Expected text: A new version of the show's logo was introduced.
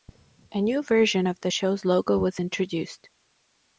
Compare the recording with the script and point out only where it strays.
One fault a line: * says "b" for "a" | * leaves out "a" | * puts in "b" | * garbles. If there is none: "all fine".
all fine